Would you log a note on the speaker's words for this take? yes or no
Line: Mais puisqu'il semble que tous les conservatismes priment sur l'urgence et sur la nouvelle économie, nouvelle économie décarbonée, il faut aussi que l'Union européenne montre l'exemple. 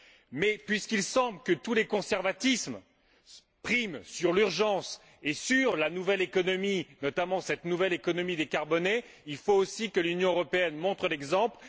yes